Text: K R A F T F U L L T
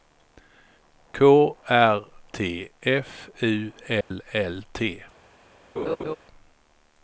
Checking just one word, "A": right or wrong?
wrong